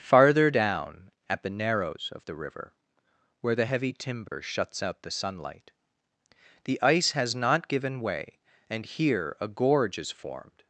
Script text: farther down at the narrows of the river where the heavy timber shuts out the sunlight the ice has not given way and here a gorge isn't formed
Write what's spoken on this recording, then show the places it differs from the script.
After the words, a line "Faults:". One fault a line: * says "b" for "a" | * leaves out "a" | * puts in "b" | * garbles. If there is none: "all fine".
farther down at the narrows of the river where the heavy timber shuts out the sunlight the ice has not given way and here a gorge is formed
Faults:
* says "is" for "isn't"